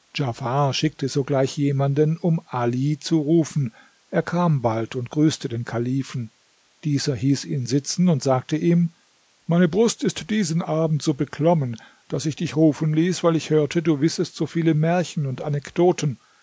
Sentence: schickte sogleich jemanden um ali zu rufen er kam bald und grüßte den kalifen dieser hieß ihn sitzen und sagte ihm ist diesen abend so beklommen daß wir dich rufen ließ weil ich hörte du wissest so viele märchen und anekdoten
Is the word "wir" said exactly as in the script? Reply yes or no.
no